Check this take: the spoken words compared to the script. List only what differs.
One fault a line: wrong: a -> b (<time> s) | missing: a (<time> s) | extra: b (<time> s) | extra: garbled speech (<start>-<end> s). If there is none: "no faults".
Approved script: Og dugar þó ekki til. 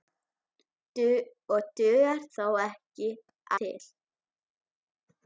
no faults